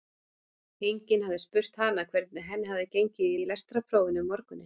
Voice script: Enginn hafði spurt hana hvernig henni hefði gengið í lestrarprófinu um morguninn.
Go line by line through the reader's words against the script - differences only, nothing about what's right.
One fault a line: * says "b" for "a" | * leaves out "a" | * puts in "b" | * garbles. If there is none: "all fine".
* puts in "í"